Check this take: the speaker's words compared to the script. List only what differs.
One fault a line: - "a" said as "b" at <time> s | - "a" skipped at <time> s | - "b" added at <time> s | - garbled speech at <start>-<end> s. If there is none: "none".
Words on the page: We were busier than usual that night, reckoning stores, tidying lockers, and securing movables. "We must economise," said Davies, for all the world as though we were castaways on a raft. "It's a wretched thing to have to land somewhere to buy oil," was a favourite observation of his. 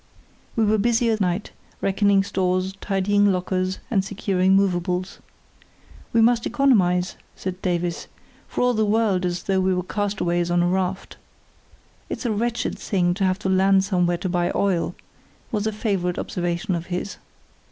- "than usual that" skipped at 1.1 s